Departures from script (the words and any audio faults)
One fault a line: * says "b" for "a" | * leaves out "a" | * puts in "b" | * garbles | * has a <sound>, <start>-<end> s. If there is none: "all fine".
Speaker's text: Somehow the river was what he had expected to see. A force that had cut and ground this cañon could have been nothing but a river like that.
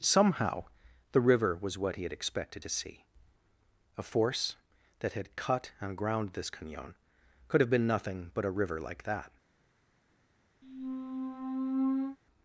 * has a squeak, 10.6-12.2 s